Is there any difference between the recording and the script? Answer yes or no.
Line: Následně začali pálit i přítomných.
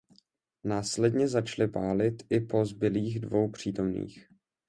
yes